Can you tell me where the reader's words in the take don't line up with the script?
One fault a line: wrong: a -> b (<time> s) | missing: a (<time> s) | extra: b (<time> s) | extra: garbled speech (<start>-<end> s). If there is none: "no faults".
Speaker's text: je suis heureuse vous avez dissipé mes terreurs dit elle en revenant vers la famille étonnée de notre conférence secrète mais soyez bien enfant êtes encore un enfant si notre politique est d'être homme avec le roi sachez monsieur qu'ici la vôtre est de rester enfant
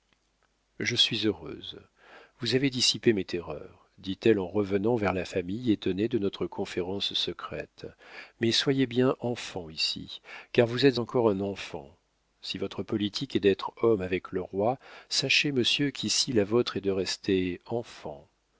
extra: ici car vous (9.7 s)
wrong: notre -> votre (12.6 s)